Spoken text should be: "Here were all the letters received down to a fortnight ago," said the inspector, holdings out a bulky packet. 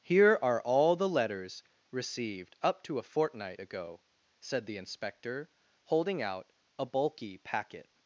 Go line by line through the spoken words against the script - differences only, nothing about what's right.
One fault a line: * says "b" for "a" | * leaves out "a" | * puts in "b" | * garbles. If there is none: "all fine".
* says "are" for "were"
* says "up" for "down"
* says "holding" for "holdings"